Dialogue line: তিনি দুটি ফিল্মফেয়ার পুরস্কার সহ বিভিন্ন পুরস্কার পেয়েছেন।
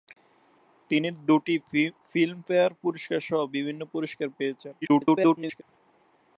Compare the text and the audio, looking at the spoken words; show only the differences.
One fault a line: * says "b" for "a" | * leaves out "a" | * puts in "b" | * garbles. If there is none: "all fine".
* garbles